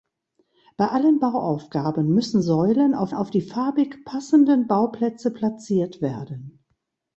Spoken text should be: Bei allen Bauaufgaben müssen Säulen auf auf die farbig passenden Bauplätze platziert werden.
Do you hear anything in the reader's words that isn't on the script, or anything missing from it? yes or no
no